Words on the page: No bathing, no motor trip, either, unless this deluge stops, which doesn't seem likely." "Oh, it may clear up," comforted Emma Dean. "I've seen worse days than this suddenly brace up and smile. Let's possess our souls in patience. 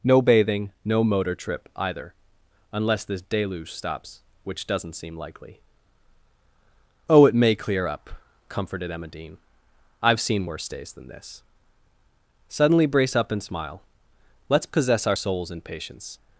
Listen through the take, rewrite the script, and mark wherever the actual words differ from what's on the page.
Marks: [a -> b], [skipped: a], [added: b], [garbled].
No bathing, no motor trip, either, unless this deluge stops, which doesn't seem likely." "Oh, it may clear up," comforted Emma Dean. "I've seen worse days than this suddenly brace up and smile. Let's possess our souls in patience.